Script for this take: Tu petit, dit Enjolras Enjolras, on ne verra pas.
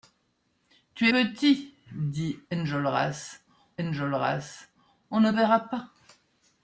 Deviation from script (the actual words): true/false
false